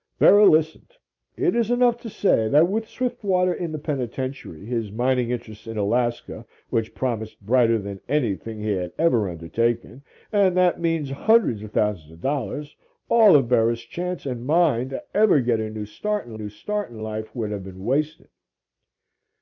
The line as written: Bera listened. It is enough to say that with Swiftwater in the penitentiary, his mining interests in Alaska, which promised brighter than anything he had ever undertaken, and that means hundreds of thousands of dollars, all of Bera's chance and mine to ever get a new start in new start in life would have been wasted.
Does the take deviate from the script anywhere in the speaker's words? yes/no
no